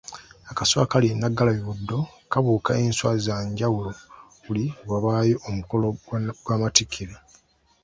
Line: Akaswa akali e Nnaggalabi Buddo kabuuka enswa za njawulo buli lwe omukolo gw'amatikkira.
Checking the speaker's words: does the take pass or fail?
fail